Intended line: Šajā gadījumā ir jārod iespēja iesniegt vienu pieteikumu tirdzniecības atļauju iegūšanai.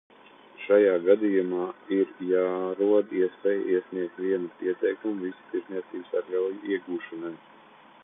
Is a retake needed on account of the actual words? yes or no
yes